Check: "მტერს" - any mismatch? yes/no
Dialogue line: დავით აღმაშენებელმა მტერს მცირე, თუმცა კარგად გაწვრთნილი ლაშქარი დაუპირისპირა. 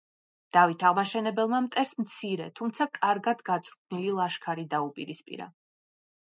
no